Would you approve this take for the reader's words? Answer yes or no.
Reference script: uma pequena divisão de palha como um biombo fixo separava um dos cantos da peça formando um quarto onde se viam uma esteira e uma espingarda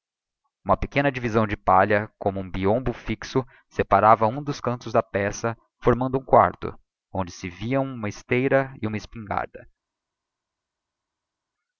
yes